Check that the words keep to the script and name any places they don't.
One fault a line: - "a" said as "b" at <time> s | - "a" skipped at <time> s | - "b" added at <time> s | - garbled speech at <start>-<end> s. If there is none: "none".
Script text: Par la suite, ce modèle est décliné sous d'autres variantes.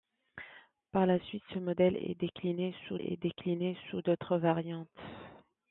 - "est décliné sous" added at 3.0 s